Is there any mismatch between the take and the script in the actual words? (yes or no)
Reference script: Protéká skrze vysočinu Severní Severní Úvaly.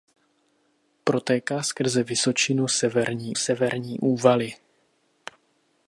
no